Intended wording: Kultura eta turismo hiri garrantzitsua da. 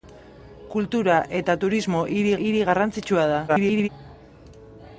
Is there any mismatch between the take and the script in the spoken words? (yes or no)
yes